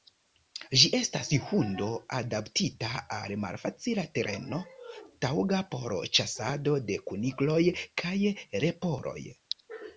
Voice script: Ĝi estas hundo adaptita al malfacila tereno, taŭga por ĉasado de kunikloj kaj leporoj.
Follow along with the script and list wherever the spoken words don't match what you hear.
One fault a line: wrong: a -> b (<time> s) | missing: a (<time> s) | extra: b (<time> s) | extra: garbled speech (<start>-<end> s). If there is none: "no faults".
no faults